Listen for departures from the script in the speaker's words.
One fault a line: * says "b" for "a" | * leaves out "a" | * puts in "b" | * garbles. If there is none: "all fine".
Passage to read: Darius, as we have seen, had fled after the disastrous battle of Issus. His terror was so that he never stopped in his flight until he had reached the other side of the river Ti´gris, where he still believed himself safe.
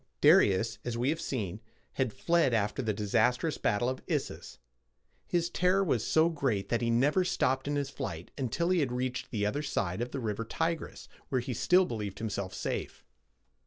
* puts in "great"